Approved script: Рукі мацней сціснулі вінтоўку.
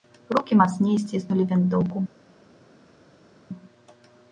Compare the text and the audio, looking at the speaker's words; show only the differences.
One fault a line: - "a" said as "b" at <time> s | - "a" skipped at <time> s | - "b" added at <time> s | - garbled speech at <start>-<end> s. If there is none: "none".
none